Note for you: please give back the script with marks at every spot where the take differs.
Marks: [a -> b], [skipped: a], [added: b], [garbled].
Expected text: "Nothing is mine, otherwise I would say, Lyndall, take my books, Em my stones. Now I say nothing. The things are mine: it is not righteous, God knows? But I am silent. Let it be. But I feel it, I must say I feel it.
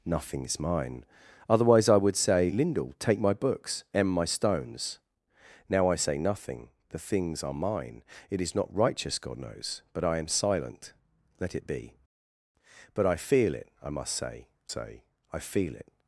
"Nothing is mine, otherwise I would say, Lyndall, take my books, Em my stones. Now I say nothing. The things are mine: it is not righteous, God knows? But I am silent. Let it be. But I feel it, I must say [added: say] I feel it.